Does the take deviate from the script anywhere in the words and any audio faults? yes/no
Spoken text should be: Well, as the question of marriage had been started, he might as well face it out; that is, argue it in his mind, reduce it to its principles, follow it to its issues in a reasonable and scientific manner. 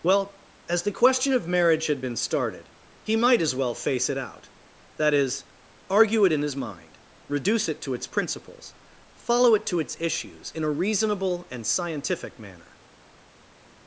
no